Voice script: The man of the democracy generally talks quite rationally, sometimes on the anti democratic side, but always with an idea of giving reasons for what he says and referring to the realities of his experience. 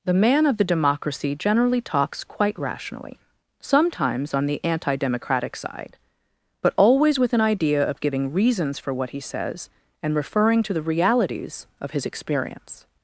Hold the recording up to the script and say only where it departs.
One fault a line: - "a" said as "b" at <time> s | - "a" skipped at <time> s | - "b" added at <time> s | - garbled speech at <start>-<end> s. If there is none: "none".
none